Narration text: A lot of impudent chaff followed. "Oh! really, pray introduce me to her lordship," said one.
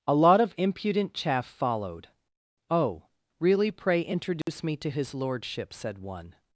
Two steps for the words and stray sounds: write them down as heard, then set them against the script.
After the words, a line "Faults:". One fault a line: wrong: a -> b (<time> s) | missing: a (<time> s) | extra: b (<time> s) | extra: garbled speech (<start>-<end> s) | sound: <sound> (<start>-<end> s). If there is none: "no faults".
A lot of impudent chaff followed. "Oh! really, pray introduce me to his lordship," said one.
Faults:
sound: dropout (4.4-4.5 s)
wrong: her -> his (4.9 s)